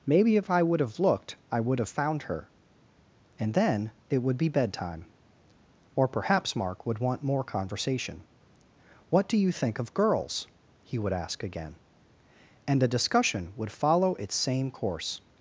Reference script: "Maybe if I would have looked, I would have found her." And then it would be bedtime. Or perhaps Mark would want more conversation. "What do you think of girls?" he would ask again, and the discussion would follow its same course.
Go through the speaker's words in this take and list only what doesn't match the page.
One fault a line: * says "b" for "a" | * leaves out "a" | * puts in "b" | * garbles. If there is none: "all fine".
all fine